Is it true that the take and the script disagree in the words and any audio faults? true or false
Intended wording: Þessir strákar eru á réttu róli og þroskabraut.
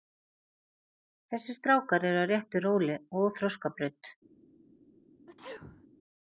true